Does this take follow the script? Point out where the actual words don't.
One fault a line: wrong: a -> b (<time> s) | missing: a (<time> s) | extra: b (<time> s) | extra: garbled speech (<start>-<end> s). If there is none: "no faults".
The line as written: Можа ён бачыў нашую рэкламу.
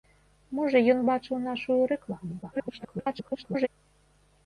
extra: garbled speech (2.4-3.7 s)